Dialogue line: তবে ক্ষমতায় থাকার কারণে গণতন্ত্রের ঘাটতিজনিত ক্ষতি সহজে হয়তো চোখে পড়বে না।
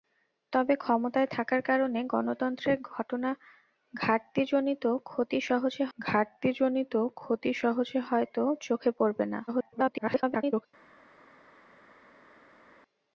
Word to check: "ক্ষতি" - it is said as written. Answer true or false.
true